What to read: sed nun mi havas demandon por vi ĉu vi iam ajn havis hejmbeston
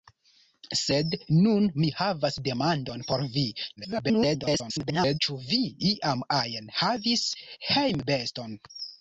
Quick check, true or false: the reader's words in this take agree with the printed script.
false